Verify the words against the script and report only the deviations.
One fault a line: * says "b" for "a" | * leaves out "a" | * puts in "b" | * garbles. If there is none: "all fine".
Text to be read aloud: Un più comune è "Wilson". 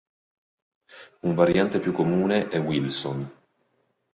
* puts in "variante"